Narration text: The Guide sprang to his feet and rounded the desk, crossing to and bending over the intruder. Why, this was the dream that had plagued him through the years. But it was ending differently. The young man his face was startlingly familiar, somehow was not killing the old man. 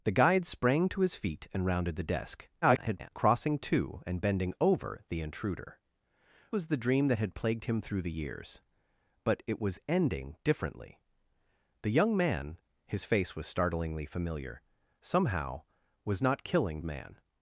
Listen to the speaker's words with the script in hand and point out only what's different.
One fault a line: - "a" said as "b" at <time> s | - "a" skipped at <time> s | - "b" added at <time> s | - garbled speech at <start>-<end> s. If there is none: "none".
- garbled speech at 2.6-3.1 s
- "Why this" skipped at 5.8 s
- "the old" skipped at 16.8 s